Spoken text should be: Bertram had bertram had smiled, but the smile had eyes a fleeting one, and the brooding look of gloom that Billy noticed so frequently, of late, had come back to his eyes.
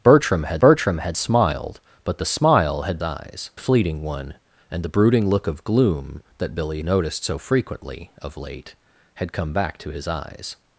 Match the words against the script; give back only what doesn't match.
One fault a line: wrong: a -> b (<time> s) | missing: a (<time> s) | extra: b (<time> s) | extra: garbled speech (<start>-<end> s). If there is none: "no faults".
no faults